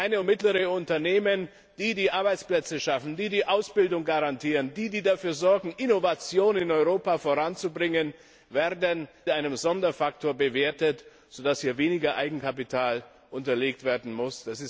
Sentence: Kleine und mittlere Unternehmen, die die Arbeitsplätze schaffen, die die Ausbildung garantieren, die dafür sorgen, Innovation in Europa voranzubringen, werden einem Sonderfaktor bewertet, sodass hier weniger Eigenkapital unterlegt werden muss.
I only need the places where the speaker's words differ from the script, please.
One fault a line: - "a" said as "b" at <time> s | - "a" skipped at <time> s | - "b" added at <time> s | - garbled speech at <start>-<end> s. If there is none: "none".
none